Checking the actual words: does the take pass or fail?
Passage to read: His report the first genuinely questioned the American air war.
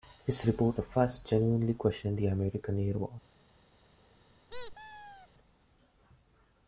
pass